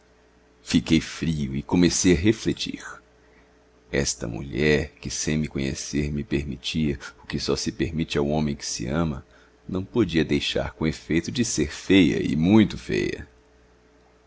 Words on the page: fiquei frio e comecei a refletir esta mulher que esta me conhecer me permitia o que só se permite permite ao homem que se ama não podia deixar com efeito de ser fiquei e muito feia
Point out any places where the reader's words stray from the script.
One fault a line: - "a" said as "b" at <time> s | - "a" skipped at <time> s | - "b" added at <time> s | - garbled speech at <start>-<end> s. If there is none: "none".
- "esta" said as "sem" at 5.1 s
- "permite" skipped at 8.2 s
- "fiquei" said as "feia" at 11.7 s